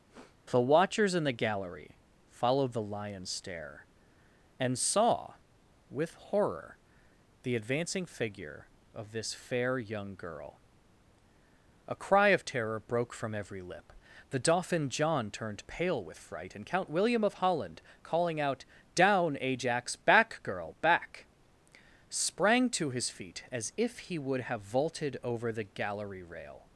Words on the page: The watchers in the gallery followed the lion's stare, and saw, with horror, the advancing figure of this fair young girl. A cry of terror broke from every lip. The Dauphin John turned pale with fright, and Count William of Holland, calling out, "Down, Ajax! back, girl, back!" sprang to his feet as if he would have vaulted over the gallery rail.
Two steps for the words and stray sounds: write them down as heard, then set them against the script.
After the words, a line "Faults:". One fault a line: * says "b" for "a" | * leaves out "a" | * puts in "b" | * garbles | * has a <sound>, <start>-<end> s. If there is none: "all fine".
The watchers in the gallery followed the lion's stare, and saw, with horror, the advancing figure of this fair young girl. A cry of terror broke from every lip. The Dauphin John turned pale with fright, and Count William of Holland, calling out, "Down, Ajax! back, girl, back!" sprang to his feet as if he would have vaulted over the gallery rail.
Faults:
* has a sniff, 0.1-0.4 s